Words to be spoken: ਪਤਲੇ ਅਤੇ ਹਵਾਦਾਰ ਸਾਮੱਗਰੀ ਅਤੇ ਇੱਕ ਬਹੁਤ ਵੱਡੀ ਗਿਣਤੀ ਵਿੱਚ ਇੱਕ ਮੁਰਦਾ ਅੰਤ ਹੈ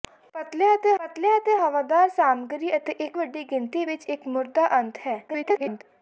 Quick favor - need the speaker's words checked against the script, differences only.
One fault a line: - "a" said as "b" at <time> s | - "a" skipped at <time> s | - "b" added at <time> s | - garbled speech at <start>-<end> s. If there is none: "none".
- "ਪਤਲੇ ਅਤੇ" added at 1.0 s
- "ਬਹੁਤ" skipped at 3.2 s
- garbled speech at 5.3-5.8 s